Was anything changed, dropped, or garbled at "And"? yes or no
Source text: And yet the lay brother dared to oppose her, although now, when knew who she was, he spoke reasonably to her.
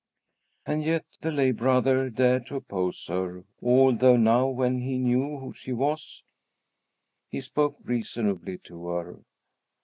no